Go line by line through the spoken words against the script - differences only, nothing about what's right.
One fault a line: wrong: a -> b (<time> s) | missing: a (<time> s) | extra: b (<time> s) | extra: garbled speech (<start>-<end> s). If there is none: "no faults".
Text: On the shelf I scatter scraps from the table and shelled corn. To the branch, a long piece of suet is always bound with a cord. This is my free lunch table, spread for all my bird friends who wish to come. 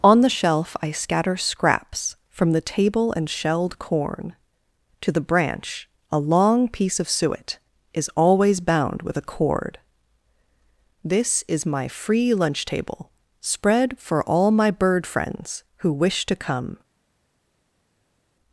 no faults